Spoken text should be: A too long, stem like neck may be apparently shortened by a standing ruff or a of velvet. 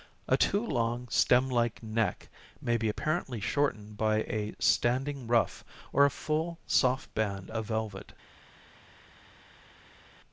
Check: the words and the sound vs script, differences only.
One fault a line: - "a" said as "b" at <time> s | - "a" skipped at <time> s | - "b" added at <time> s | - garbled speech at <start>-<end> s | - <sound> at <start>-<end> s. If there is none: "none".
- "full soft band" added at 6.1 s